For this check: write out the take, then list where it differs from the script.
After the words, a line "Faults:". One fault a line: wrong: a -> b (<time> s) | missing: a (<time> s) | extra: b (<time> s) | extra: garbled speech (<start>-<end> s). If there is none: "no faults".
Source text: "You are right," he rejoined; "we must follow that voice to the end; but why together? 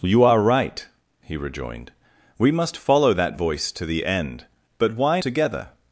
"You are right," he rejoined; "we must follow that voice to the end; but why together?
Faults:
no faults